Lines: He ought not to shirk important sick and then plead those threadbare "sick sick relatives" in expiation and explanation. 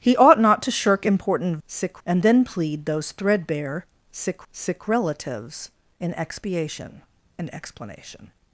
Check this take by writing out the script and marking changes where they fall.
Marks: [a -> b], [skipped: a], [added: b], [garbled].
He ought not to shirk important sick and then plead those threadbare "sick sick relatives" in expiation and explanation.